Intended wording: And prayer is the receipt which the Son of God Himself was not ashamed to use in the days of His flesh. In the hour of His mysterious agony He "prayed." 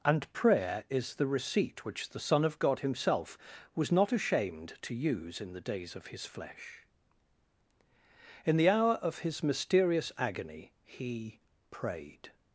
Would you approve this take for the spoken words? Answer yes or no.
yes